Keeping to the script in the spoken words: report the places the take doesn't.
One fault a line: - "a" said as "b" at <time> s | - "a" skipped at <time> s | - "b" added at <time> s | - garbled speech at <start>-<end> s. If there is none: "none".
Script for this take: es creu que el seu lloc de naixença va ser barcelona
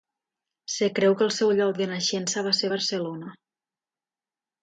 none